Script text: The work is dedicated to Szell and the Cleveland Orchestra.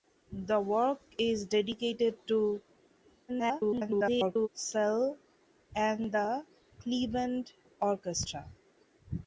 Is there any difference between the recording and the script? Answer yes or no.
yes